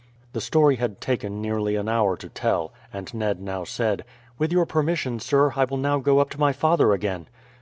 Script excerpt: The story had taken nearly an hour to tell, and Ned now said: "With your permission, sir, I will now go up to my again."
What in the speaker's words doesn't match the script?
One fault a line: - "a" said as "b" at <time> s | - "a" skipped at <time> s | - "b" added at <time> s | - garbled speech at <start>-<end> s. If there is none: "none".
- "father" added at 6.5 s